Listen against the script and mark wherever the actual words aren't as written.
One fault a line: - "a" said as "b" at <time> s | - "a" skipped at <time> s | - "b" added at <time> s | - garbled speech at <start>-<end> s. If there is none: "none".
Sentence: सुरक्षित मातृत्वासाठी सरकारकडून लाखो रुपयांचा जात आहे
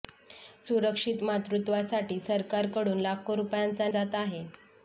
none